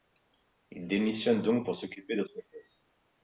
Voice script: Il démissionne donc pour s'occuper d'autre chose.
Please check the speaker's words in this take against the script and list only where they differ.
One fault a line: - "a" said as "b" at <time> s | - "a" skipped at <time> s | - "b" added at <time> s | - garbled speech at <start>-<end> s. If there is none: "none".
none